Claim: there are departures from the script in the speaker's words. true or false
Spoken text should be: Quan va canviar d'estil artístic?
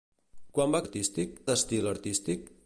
true